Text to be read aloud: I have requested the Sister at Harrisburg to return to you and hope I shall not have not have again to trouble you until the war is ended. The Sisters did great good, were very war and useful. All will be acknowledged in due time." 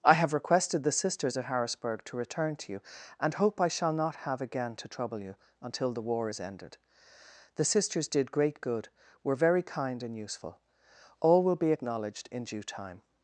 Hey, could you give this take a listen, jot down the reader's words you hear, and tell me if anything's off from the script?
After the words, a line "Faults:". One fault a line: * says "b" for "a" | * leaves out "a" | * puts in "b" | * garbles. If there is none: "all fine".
I have requested the Sisters at Harrisburg to return to you and hope I shall not have again to trouble you until the war is ended. The Sisters did great good, were very kind and useful. All will be acknowledged in due time."
Faults:
* says "Sisters" for "Sister"
* leaves out "not have"
* says "kind" for "war"